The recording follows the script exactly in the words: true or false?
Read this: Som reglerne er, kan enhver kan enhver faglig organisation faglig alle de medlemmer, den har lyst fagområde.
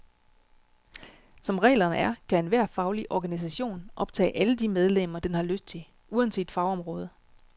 false